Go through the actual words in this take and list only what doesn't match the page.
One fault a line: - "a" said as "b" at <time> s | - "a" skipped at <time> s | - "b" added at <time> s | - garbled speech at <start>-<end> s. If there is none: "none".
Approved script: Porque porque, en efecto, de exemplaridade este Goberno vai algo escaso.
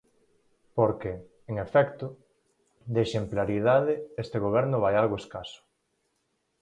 - "porque" skipped at 1.1 s